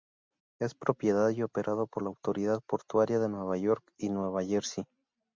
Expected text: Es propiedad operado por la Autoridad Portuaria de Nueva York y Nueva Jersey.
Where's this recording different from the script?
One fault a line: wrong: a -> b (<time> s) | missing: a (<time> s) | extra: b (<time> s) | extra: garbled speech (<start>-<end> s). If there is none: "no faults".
extra: y (1.3 s)